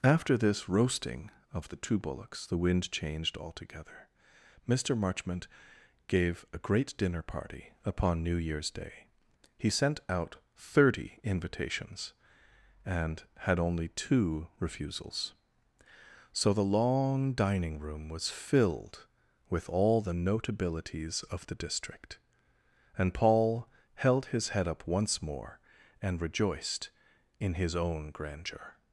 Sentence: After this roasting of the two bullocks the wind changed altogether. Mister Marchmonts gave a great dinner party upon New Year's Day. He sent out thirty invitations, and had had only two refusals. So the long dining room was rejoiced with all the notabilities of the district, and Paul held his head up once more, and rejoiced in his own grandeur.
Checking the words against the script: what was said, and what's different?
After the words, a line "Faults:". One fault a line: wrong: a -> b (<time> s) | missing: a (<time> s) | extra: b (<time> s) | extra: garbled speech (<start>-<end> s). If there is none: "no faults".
After this roasting of the two bullocks the wind changed altogether. Mister Marchmont gave a great dinner party upon New Year's Day. He sent out thirty invitations, and had only two refusals. So the long dining room was filled with all the notabilities of the district, and Paul held his head up once more, and rejoiced in his own grandeur.
Faults:
wrong: Marchmonts -> Marchmont (5.0 s)
missing: had (13.6 s)
wrong: rejoiced -> filled (18.3 s)